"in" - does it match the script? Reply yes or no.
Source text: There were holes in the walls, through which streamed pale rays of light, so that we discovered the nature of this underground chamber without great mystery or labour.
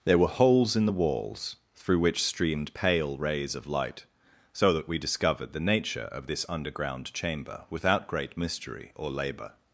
yes